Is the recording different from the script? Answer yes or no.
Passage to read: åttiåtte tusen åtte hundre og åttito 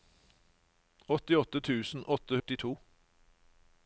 yes